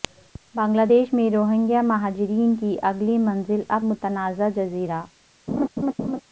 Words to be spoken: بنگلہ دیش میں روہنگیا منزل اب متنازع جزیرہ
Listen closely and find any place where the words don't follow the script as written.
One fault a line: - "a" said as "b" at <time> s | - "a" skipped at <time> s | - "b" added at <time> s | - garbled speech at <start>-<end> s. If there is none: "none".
- "مہاجرین کی اگلی" added at 1.8 s